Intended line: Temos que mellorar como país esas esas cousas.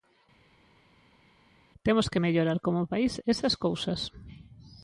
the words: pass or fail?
fail